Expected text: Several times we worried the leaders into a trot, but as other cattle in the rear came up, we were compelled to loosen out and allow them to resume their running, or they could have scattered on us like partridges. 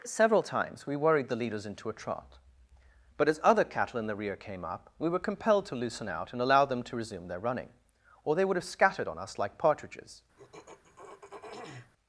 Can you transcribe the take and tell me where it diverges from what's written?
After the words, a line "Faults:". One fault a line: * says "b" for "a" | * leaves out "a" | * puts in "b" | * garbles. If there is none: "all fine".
Several times we worried the leaders into a trot, but as other cattle in the rear came up, we were compelled to loosen out and allow them to resume their running, or they would have scattered on us like partridges.
Faults:
* says "would" for "could"